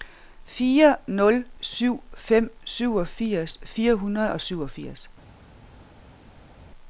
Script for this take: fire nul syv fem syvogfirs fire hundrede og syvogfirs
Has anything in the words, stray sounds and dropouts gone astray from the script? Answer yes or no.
no